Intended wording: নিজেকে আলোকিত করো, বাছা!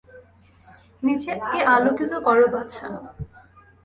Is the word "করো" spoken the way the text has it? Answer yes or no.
yes